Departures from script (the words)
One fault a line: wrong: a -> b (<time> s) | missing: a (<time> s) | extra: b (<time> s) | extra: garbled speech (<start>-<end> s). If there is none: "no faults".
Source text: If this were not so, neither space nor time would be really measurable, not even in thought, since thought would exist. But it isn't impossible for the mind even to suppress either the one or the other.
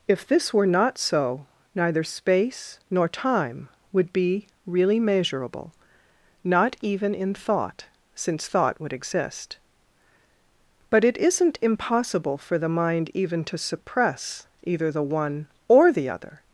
no faults